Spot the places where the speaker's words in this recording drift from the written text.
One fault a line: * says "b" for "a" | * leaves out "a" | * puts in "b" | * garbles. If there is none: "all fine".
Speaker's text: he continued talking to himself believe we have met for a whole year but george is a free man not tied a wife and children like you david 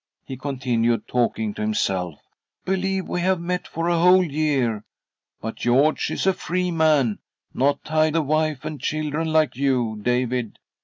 all fine